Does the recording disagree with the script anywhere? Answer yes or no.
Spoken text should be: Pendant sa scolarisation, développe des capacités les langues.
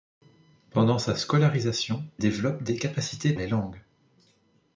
no